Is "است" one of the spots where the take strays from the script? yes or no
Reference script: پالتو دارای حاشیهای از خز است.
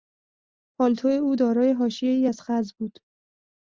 yes